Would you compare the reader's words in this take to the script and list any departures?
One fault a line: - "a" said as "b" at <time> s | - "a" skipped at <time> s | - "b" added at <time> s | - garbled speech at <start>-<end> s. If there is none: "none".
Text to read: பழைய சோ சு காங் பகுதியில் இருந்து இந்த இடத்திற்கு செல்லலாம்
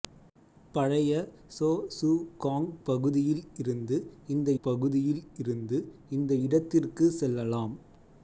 - "பகுதியில் இருந்து இந்த" added at 4.6 s